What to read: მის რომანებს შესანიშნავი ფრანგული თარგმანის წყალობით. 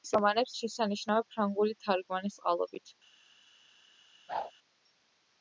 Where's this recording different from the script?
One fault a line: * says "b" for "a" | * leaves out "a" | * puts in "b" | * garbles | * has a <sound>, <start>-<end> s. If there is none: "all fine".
* has a whoosh, 4.3-4.5 s